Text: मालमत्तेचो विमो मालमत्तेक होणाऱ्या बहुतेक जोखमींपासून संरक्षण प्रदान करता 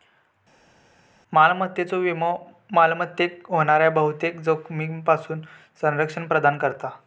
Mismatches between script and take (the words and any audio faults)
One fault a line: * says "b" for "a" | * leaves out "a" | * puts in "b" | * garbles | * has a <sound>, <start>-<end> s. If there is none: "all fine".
all fine